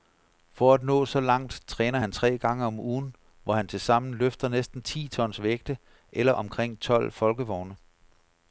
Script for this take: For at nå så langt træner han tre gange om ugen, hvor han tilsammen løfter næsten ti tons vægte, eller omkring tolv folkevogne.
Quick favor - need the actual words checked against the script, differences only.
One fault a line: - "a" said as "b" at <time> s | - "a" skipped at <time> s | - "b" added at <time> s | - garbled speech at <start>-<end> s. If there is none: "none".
none